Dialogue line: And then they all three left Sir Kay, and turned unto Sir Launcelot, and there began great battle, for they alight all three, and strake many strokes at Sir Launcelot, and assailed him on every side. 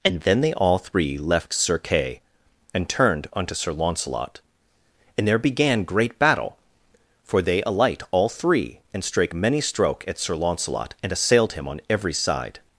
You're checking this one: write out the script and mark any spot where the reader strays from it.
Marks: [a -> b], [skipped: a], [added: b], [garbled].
And then they all three left Sir Kay, and turned unto Sir Launcelot, and there began great battle, for they alight all three, and strake many [strokes -> stroke] at Sir Launcelot, and assailed him on every side.